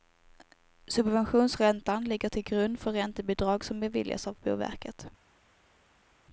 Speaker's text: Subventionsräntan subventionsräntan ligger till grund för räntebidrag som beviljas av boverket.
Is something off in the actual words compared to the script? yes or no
yes